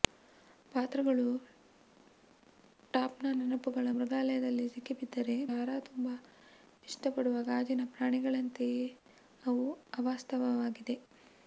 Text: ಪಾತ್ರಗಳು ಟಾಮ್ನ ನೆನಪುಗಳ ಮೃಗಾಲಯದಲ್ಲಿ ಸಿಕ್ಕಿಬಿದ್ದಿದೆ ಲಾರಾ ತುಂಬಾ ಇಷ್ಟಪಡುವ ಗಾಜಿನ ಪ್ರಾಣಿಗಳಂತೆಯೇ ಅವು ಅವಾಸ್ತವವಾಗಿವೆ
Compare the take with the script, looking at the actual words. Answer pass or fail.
pass